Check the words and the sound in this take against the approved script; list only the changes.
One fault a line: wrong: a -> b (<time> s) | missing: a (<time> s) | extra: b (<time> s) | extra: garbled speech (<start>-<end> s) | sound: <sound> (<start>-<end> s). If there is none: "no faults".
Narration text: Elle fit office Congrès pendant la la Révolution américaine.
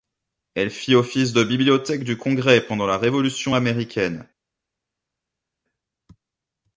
extra: de bibliothèque du (1.3 s)
missing: la (3.0 s)